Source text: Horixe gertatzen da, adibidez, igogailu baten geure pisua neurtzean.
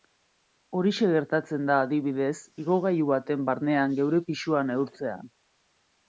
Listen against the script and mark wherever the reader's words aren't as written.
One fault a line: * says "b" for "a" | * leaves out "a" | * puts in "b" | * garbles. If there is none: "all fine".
* puts in "barnean"